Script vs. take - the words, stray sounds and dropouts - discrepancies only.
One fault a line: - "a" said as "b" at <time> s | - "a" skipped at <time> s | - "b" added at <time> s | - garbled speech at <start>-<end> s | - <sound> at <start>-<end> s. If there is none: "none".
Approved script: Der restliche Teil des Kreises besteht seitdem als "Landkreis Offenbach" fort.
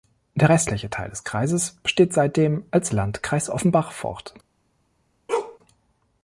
- bark at 5.3-5.6 s